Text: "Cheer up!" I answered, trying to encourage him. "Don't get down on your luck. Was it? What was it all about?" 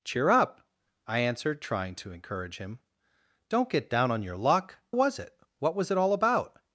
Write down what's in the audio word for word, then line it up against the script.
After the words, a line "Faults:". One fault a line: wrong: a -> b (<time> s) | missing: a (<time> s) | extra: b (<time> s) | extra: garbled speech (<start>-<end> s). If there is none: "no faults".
"Cheer up!" I answered, trying to encourage him. "Don't get down on your luck. Was it? What was it all about?"
Faults:
no faults